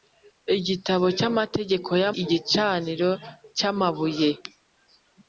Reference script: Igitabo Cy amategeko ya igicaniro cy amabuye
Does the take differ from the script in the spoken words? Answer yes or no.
no